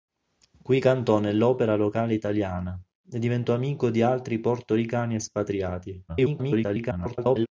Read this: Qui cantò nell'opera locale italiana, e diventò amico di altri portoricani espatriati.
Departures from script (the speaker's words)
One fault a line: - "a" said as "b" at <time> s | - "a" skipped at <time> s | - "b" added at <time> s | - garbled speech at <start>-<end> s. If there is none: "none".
- garbled speech at 6.1-7.5 s